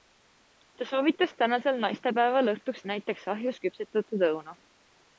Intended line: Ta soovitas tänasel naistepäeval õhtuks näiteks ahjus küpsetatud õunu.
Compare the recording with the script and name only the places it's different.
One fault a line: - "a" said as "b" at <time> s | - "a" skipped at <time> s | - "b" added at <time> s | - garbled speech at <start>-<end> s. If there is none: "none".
none